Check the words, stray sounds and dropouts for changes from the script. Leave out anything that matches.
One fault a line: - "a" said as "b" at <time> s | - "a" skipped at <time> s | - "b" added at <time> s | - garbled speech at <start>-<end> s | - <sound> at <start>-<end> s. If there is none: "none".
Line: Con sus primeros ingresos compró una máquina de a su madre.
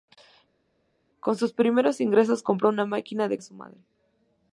none